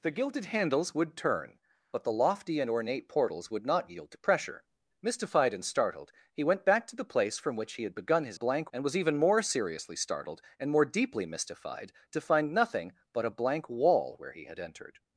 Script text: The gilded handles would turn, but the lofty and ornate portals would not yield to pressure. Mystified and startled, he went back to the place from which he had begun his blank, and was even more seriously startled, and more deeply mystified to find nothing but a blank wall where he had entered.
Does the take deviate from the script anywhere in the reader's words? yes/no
no